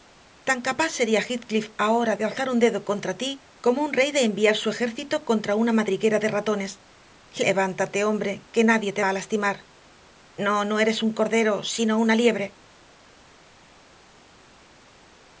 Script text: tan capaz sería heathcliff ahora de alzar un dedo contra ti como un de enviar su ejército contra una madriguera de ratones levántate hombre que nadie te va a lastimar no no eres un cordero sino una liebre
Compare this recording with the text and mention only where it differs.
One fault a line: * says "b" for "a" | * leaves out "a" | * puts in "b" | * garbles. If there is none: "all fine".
* puts in "rey"